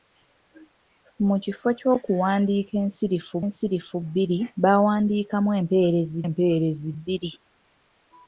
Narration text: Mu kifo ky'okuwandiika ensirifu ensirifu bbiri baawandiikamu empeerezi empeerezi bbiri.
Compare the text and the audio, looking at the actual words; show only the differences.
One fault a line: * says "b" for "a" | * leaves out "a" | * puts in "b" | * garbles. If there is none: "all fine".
all fine